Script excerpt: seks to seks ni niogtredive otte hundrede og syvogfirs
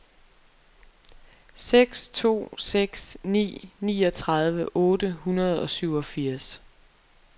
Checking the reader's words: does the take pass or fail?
pass